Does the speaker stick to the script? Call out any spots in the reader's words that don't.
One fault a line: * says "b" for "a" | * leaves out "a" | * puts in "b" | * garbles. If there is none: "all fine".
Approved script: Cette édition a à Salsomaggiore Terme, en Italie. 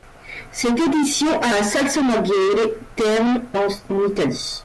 all fine